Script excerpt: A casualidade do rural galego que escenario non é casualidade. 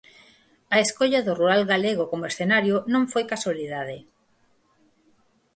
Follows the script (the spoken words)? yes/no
no